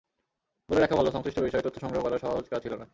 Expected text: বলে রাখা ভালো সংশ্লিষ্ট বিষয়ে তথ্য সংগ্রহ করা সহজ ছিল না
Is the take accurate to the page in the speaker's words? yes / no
no